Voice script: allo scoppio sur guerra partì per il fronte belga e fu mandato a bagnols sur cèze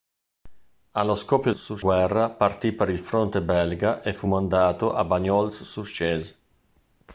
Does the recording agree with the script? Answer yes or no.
yes